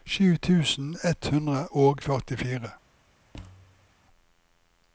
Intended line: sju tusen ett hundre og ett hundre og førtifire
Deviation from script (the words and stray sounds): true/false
true